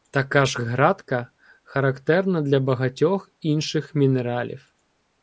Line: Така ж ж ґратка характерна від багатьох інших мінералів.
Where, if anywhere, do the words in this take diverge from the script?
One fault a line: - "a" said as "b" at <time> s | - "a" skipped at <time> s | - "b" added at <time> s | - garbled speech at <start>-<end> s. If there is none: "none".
- "ж" skipped at 0.6 s
- "від" said as "для" at 2.4 s